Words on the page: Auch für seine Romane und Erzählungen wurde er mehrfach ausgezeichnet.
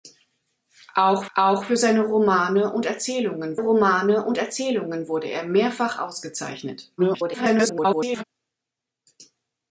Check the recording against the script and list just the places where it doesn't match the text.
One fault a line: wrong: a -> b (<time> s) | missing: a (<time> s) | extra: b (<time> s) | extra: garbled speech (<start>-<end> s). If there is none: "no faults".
extra: auch (1.4 s)
extra: Romane und Erzählungen (3.5 s)
extra: garbled speech (7.0-8.2 s)